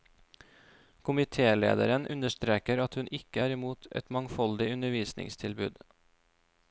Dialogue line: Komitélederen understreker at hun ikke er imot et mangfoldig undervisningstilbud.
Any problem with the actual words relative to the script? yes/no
no